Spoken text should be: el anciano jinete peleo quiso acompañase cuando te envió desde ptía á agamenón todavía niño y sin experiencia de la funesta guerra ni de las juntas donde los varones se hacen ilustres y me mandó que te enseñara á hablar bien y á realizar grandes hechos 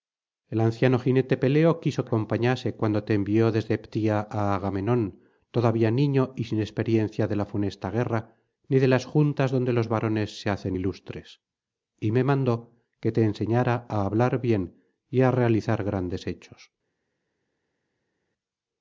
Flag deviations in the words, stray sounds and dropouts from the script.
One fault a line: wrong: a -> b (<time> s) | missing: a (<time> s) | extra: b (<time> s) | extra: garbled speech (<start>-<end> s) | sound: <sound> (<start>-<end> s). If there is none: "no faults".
no faults